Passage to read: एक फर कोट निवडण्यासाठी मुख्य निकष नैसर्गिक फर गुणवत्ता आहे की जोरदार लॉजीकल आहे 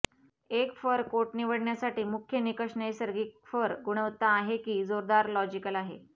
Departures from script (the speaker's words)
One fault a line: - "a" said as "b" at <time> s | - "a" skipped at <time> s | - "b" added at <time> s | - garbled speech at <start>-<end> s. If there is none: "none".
none